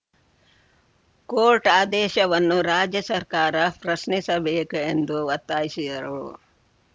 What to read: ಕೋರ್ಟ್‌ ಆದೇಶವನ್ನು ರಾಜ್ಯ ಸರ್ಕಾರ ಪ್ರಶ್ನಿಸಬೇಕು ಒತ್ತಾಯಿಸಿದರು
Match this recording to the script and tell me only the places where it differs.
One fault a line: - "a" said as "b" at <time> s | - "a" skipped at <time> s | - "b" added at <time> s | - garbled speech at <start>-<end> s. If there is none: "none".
- "ಎಂದು" added at 4.9 s